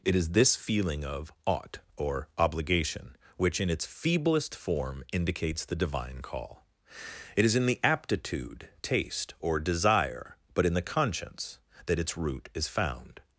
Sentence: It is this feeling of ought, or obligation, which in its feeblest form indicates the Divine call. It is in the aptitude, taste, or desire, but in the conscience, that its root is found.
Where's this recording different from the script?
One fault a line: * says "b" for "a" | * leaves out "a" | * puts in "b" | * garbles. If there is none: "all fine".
all fine